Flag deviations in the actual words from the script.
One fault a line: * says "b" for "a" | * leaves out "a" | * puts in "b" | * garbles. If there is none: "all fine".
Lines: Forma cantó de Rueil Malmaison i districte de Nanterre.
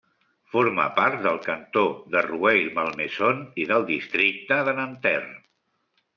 * puts in "part del"
* puts in "del"